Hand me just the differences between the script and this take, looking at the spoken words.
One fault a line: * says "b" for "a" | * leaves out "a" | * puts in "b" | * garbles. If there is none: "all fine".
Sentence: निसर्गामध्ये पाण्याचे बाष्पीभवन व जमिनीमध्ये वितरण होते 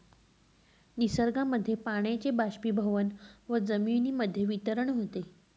all fine